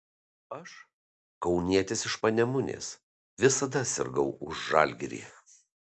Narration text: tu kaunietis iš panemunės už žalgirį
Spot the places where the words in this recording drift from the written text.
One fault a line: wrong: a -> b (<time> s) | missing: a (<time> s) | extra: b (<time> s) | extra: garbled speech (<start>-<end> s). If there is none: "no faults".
wrong: tu -> aš (0.6 s)
extra: visada sirgau (3.5 s)